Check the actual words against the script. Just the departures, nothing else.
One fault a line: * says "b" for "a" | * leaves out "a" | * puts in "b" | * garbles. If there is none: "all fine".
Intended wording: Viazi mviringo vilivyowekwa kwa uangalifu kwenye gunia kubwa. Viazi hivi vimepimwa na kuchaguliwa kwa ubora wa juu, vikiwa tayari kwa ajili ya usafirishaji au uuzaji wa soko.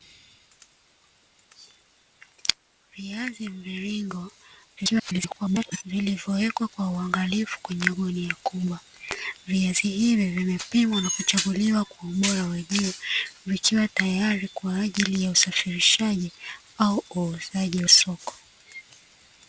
* garbles
* leaves out "wa"